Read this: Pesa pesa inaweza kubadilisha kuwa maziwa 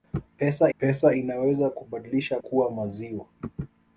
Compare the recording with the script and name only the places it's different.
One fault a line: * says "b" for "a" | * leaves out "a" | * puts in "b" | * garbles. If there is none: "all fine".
all fine